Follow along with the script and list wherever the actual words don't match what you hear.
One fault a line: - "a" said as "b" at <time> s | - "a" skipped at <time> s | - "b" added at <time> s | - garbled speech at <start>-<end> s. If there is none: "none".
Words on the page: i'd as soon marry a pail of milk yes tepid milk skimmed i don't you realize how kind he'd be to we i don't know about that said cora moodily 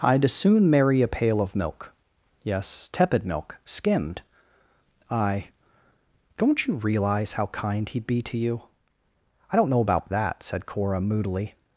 - "we" said as "you" at 8.4 s